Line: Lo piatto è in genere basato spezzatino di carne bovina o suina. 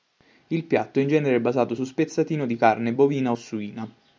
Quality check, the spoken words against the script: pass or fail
fail